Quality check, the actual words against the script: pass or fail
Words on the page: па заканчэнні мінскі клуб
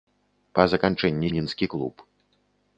pass